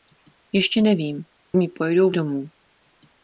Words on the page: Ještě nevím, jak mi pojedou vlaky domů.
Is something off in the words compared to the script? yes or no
yes